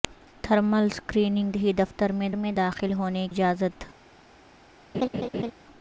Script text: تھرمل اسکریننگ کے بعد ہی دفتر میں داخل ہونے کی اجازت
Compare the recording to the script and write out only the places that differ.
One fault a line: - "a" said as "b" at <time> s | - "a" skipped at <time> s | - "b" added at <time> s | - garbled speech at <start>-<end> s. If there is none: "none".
- "کے بعد" skipped at 1.5 s
- "میں" added at 2.3 s
- "کی" skipped at 3.3 s